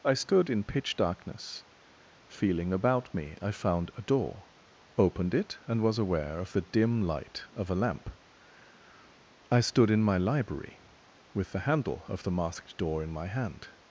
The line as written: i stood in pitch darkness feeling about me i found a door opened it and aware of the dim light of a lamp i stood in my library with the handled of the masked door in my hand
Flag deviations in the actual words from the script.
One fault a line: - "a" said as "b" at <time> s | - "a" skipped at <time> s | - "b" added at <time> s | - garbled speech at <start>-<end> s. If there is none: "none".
- "was" added at 5.8 s
- "handled" said as "handle" at 11.6 s